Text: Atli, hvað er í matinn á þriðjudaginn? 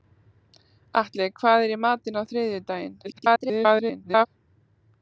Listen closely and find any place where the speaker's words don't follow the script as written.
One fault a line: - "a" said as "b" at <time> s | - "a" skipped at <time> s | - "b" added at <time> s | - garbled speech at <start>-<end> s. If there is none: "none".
- garbled speech at 3.0-4.3 s